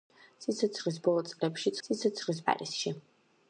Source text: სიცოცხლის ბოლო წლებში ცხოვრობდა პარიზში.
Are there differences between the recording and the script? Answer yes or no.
yes